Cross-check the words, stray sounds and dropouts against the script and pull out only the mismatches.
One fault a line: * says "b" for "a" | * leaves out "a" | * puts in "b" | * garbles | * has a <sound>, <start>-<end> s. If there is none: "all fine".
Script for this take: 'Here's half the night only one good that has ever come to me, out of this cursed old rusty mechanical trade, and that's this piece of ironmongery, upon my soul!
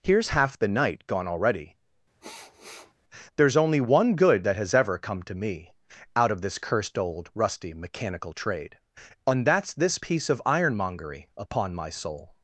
* puts in "gone already There's"
* has a sniff, 2.2-2.9 s